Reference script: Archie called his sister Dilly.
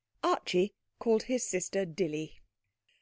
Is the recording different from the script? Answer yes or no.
no